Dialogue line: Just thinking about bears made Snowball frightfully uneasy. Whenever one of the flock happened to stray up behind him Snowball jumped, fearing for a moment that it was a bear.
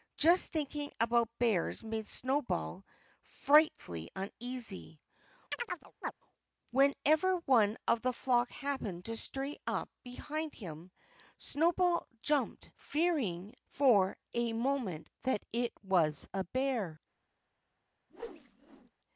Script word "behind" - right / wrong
right